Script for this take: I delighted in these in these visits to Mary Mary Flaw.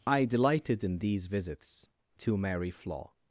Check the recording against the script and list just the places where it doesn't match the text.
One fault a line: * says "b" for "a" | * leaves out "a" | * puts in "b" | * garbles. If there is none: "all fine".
* leaves out "in these"
* leaves out "Mary"